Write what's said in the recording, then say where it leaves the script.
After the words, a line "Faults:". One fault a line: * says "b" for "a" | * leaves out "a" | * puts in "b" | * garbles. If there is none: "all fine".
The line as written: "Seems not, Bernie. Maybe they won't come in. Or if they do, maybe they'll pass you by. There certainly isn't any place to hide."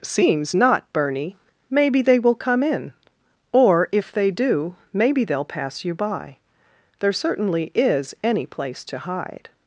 "Seems not, Bernie. Maybe they will come in. Or if they do, maybe they'll pass you by. There certainly is any place to hide."
Faults:
* says "will" for "won't"
* says "is" for "isn't"